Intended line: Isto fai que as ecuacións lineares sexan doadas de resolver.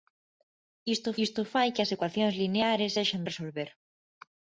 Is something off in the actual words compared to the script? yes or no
yes